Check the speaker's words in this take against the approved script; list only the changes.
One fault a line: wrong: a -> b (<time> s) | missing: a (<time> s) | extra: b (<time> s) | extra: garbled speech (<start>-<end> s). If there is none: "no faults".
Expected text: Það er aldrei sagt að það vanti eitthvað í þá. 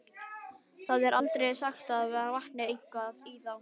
no faults